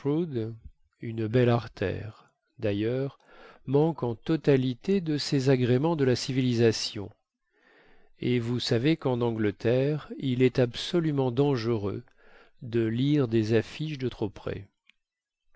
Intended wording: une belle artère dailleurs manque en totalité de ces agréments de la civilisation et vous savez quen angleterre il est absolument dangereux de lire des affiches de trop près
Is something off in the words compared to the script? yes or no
no